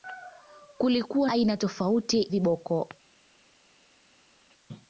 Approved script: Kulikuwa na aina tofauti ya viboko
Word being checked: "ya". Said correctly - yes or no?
no